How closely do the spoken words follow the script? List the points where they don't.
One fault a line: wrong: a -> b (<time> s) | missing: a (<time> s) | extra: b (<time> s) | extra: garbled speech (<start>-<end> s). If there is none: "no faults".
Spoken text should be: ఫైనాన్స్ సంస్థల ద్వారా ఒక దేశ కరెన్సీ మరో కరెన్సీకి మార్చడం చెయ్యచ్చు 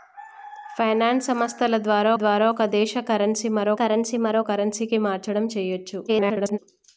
extra: ద్వారా (2.1 s)
extra: కరెన్సీ మరో (3.8 s)
extra: garbled speech (6.1-6.6 s)